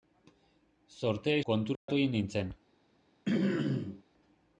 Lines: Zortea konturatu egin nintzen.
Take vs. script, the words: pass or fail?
pass